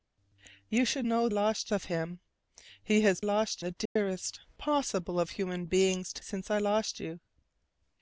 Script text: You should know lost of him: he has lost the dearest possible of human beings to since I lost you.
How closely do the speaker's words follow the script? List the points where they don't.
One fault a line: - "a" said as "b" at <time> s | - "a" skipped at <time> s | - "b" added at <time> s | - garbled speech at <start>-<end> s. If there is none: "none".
none